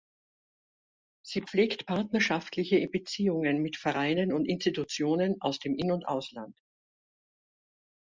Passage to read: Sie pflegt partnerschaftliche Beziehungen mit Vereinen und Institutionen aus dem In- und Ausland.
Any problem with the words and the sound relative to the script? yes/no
no